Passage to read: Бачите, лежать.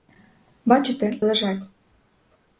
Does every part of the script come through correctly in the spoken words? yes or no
yes